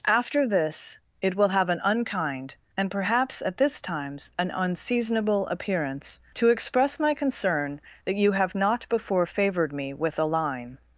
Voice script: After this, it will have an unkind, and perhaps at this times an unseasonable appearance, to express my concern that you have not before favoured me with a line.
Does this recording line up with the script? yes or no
yes